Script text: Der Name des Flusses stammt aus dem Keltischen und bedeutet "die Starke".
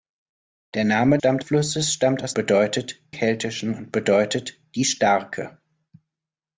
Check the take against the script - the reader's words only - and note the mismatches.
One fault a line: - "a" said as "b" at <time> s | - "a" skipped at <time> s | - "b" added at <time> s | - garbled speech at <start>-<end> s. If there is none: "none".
- "des" said as "stammt" at 1.2 s
- "dem" said as "bedeutet" at 2.3 s